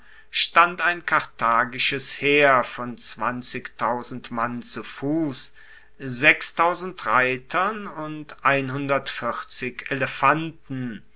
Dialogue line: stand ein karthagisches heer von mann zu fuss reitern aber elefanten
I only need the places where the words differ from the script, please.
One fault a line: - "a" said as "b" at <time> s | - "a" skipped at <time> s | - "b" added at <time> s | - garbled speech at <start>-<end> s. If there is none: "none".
- "aber" said as "und" at 7.9 s